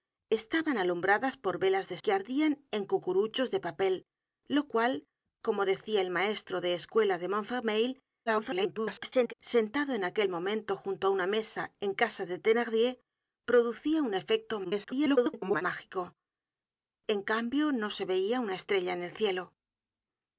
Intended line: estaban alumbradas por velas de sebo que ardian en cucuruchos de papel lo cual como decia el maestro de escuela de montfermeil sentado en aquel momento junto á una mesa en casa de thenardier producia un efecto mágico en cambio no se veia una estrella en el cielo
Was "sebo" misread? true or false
true